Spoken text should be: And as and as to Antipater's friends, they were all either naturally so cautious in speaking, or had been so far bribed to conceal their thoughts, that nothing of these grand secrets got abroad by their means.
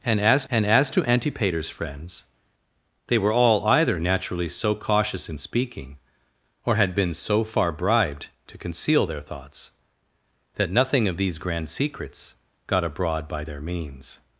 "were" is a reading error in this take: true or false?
false